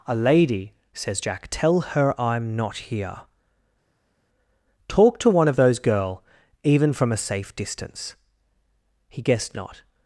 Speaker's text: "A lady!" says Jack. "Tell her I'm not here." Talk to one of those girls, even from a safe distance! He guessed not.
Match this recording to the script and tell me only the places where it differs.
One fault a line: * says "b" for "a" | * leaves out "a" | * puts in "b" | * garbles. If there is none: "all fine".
* says "girl" for "girls"